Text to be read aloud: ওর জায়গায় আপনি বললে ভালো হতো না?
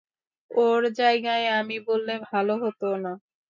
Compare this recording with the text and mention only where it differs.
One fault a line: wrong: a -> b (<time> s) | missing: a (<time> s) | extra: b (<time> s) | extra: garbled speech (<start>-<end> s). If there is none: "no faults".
wrong: আপনি -> আমি (1.6 s)